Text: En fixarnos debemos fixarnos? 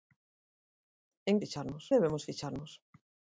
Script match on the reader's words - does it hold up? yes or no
yes